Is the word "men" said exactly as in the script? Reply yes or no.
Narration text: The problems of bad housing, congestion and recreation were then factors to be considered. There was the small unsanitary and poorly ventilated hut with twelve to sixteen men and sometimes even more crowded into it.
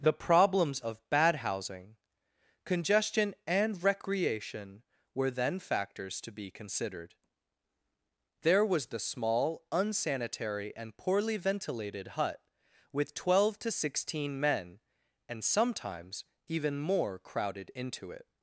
yes